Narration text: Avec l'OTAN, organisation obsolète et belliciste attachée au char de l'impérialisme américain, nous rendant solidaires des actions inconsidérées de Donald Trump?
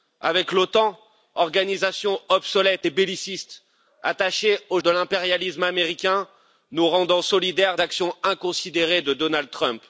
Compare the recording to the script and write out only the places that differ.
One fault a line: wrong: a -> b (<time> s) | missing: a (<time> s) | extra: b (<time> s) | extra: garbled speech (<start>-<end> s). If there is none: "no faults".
missing: char (4.8 s)
missing: des (7.8 s)